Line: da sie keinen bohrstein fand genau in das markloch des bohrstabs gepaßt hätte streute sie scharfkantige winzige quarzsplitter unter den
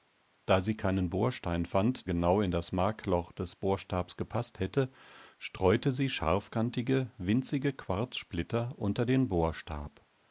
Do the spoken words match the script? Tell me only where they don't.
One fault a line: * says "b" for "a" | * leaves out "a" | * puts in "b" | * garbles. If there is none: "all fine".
all fine